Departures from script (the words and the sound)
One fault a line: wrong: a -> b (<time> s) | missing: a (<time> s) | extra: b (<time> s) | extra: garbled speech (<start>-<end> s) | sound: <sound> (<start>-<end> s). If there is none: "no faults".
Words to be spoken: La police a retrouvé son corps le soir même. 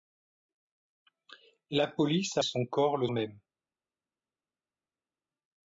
missing: retrouvé (2.4 s)
missing: soir (3.1 s)